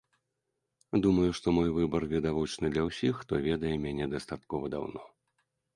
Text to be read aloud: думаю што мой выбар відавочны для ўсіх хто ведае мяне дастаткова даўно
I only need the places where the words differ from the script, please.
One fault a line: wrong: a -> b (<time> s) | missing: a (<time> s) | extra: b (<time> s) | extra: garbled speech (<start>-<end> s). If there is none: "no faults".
no faults